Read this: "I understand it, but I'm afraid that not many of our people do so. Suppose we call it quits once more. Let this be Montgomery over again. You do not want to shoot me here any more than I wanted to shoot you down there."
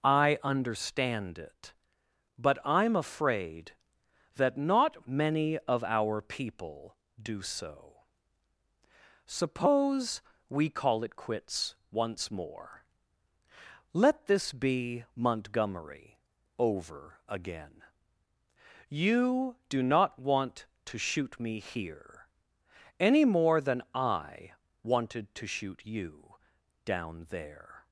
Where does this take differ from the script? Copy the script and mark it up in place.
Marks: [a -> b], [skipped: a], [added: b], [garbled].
"I understand it, but I'm afraid that not many of our people do so. Suppose we call it quits once more. Let this be Montgomery over again. You do not want to shoot me here any more than I wanted to shoot you down there."